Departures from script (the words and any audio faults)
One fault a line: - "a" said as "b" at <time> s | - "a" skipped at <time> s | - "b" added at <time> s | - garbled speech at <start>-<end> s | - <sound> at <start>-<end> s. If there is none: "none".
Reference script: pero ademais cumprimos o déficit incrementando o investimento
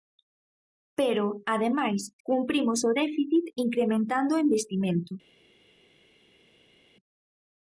none